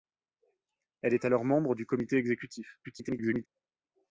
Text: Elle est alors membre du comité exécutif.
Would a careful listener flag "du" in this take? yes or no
no